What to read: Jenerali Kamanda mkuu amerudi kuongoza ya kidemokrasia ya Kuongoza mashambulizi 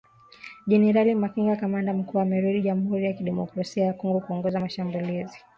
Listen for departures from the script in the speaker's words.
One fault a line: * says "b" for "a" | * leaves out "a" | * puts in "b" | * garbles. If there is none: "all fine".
* puts in "Makenga"
* says "jamhuri" for "kuongoza"
* puts in "Kongo"